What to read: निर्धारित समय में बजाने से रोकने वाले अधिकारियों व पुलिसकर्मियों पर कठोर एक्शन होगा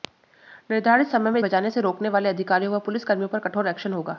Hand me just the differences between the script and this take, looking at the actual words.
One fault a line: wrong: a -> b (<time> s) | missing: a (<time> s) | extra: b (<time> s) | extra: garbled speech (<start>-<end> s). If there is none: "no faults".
no faults